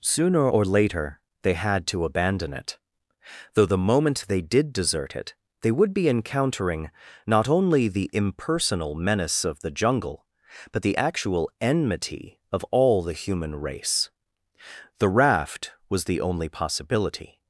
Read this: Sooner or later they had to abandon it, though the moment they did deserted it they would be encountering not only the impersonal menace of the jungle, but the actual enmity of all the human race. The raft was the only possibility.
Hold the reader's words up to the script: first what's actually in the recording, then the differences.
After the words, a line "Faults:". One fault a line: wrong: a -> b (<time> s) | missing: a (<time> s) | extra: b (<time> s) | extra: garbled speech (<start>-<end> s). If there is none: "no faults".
Sooner or later they had to abandon it, though the moment they did desert it they would be encountering not only the impersonal menace of the jungle, but the actual enmity of all the human race. The raft was the only possibility.
Faults:
wrong: deserted -> desert (4.7 s)